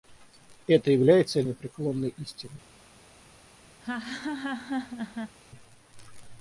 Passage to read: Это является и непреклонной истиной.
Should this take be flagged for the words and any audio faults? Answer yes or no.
yes